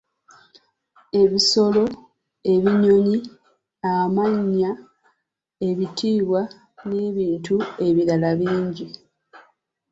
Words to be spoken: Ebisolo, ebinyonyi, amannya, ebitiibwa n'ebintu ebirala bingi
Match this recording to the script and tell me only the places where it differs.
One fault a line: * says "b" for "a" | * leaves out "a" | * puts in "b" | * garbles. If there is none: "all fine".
all fine